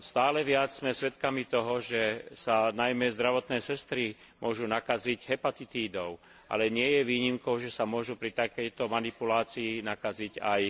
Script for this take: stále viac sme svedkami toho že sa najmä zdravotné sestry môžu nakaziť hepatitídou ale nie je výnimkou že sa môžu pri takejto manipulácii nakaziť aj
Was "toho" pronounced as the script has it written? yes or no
yes